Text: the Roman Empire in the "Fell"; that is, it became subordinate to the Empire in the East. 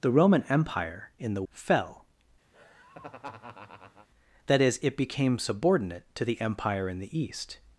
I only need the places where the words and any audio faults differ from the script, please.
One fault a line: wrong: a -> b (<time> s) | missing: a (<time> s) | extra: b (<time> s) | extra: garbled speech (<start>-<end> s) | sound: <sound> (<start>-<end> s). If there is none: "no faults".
sound: laugh (2.5-4.1 s)